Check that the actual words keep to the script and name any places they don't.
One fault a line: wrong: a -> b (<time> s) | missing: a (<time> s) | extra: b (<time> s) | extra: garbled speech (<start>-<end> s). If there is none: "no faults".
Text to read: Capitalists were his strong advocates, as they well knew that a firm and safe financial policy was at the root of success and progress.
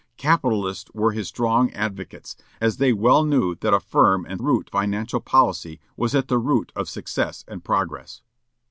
wrong: safe -> root (4.4 s)